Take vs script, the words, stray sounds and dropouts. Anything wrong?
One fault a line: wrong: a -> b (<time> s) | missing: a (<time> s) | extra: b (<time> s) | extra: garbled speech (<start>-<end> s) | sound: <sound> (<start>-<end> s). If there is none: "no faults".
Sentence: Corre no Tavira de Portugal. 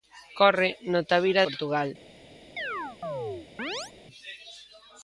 missing: de (1.4 s)
sound: chirp (2.6-3.9 s)